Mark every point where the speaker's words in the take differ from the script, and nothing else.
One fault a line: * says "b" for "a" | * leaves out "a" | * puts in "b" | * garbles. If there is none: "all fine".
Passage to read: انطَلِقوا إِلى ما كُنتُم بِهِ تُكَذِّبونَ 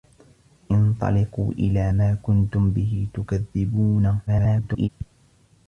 * garbles